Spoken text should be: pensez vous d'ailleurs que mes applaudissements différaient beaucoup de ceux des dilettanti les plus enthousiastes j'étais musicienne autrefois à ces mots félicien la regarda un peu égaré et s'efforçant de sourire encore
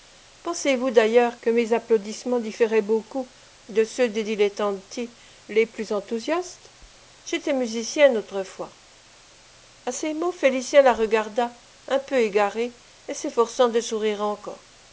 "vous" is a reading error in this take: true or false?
false